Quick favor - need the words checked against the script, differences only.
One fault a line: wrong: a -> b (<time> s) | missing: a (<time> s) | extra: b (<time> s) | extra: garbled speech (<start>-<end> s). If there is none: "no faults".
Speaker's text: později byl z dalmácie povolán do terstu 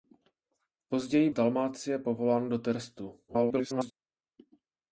missing: byl (1.3 s)
extra: garbled speech (3.3-3.9 s)